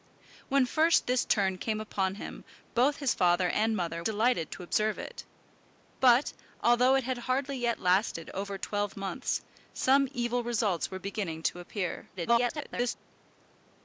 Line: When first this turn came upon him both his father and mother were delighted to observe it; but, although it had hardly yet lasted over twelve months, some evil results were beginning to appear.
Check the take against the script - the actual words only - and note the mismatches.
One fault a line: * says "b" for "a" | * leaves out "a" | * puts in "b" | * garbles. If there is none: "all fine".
* leaves out "were"
* garbles